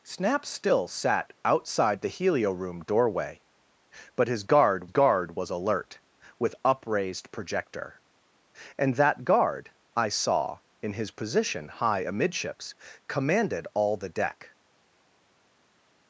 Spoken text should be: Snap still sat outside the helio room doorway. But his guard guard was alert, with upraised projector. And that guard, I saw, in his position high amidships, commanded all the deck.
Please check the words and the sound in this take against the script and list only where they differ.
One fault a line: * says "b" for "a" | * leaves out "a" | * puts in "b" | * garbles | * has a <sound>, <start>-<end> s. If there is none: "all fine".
all fine